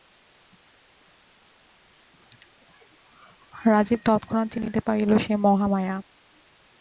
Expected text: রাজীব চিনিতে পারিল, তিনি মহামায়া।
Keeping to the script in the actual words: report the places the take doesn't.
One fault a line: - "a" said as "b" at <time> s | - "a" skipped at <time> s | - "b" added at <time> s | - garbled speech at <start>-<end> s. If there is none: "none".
- "তৎক্ষণাৎ" added at 4.1 s
- "তিনি" said as "সে" at 5.2 s